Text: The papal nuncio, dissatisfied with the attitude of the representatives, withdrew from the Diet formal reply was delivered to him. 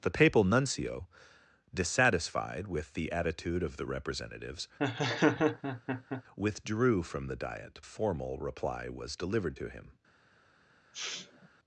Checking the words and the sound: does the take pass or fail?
fail